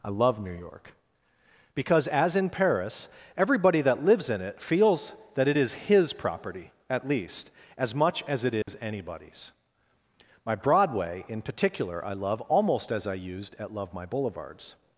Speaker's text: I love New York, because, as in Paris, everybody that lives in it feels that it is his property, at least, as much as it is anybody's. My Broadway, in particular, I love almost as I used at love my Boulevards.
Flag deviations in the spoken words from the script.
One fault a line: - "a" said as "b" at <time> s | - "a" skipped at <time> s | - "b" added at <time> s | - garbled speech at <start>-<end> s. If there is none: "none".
none